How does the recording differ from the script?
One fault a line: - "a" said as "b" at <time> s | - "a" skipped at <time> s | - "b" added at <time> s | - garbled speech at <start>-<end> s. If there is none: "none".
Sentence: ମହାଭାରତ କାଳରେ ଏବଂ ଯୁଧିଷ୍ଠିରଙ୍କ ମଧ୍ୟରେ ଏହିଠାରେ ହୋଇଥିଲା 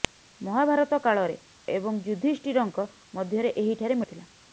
none